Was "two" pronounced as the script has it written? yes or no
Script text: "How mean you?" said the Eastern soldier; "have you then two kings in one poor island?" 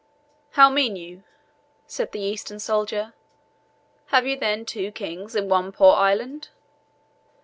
yes